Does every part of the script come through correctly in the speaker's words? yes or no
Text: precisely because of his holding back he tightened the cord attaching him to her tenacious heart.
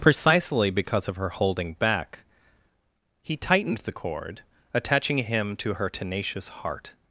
no